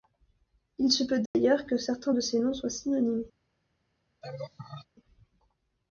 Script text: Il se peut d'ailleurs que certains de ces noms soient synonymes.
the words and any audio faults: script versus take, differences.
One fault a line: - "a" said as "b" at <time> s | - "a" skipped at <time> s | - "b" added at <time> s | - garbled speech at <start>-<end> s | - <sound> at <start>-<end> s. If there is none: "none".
- dropout at 1.3-1.3 s
- laugh at 4.2-4.9 s